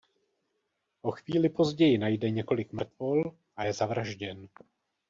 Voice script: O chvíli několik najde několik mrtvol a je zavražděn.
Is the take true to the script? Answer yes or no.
no